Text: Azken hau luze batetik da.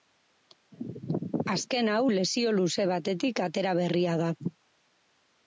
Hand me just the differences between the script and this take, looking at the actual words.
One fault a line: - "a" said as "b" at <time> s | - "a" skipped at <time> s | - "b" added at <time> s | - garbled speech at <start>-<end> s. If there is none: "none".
- "lesio" added at 2.1 s
- "atera berria" added at 3.5 s